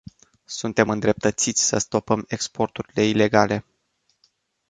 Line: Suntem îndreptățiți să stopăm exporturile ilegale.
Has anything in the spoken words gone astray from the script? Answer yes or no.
no